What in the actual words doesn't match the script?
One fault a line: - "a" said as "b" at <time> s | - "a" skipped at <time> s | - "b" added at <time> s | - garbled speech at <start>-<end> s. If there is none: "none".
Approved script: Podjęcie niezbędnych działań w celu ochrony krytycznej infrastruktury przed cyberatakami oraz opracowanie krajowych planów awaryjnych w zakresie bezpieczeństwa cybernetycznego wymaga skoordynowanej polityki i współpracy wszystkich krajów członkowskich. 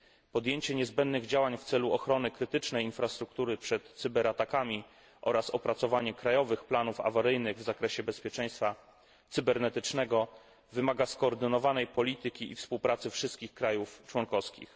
none